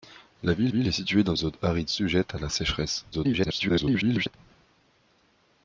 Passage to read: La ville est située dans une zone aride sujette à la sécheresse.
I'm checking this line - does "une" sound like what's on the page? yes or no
no